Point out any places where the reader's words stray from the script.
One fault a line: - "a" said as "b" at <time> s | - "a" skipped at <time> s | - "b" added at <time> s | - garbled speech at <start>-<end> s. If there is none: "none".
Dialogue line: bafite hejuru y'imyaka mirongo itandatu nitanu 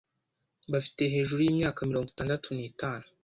none